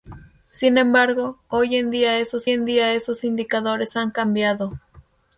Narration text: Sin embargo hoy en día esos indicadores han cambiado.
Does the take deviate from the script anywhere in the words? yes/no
yes